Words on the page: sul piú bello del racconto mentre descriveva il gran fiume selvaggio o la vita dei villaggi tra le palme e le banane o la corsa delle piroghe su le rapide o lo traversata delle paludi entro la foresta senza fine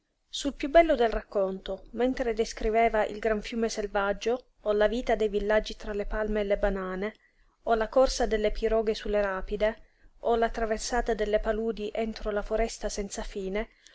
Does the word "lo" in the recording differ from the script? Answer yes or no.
yes